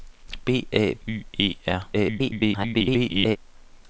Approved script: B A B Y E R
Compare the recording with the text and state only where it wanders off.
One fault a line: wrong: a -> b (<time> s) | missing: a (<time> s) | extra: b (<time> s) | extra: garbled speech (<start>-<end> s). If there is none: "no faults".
missing: B (0.9 s)
extra: garbled speech (1.9-3.4 s)